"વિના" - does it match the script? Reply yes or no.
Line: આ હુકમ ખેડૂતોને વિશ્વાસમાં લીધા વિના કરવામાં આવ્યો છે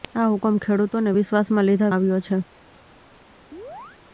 no